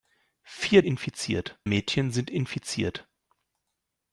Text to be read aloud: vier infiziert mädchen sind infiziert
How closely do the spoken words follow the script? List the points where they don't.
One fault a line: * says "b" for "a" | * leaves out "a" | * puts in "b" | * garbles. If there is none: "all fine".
all fine